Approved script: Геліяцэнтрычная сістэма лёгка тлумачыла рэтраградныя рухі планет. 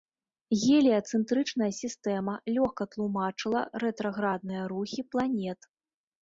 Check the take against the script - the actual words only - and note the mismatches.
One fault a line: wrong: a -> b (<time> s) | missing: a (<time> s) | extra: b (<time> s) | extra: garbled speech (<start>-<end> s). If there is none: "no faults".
no faults